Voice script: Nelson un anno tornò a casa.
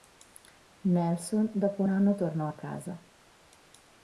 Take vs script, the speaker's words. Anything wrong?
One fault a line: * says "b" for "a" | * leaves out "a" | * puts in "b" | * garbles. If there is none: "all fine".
* puts in "dopo"